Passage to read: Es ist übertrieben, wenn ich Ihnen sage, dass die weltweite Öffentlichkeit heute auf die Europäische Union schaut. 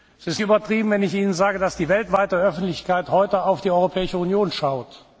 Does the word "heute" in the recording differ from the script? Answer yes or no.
no